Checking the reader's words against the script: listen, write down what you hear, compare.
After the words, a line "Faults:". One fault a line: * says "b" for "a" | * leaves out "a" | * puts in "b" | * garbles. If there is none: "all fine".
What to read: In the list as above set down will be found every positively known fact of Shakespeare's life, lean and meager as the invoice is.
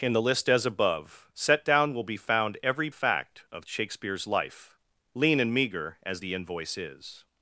In the list as above set down will be found every fact of Shakespeare's life, lean and meager as the invoice is.
Faults:
* leaves out "positively known"